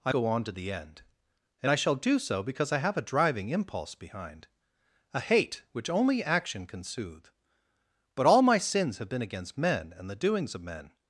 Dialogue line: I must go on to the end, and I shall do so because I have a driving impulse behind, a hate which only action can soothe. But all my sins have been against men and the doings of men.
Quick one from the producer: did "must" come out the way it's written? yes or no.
no